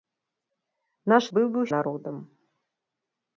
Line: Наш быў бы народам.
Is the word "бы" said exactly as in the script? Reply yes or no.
yes